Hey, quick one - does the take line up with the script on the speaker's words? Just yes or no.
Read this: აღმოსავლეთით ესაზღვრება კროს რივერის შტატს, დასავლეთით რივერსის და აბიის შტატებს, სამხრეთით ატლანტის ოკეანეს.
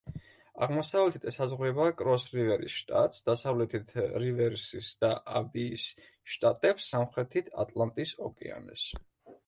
yes